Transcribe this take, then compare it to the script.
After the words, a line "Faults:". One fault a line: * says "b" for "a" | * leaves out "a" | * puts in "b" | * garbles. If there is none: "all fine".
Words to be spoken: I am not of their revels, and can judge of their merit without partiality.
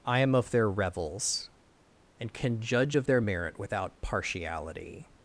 I am of their revels, and can judge of their merit without partiality.
Faults:
* leaves out "not"